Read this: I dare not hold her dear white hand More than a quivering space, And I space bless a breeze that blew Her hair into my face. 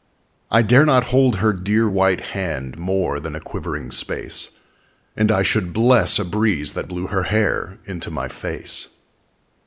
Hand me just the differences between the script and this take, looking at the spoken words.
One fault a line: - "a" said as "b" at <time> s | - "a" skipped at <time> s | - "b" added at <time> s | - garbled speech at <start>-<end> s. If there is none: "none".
- "space" said as "should" at 5.4 s